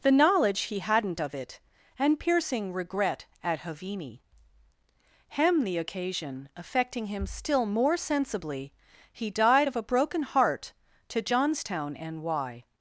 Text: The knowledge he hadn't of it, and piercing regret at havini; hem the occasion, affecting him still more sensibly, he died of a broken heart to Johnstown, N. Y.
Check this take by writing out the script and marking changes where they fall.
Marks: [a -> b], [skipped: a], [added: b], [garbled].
The knowledge he hadn't of it, and piercing regret at havini; hem the occasion, affecting him still more sensibly, he died of a broken heart to Johnstown, N. Y.